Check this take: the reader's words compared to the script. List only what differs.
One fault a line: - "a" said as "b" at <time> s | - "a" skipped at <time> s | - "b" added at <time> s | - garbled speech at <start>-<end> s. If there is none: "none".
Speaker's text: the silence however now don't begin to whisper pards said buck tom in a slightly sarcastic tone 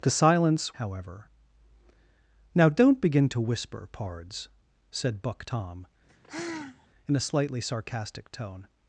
none